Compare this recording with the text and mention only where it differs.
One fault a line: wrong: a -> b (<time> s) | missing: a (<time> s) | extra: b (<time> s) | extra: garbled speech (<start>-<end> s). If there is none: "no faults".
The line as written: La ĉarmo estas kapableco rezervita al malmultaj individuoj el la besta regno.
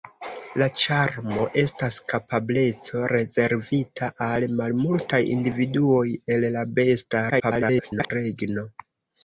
extra: garbled speech (7.3-8.1 s)